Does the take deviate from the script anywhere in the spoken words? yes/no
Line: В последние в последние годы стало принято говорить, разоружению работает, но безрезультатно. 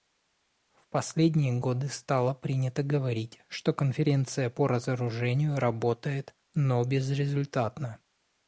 yes